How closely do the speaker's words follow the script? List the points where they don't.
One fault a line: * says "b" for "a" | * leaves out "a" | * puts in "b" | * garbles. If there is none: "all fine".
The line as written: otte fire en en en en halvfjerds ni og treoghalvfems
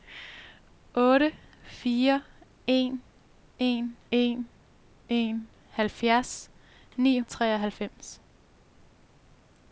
all fine